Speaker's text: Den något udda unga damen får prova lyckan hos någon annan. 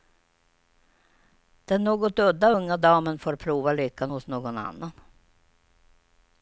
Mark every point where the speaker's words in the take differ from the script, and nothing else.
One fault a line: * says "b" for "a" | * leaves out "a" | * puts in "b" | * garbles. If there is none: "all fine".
all fine